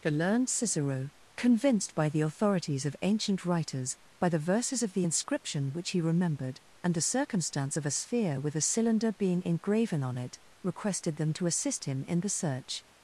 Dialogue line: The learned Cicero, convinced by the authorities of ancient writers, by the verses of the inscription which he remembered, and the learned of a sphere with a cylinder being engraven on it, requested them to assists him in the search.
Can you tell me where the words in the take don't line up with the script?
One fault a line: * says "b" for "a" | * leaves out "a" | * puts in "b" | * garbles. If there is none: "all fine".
* says "circumstance" for "learned"
* says "assist" for "assists"